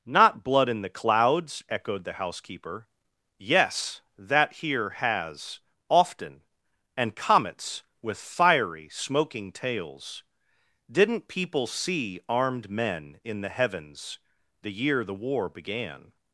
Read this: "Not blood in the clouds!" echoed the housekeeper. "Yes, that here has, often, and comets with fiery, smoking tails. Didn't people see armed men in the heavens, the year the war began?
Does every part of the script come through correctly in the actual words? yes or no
yes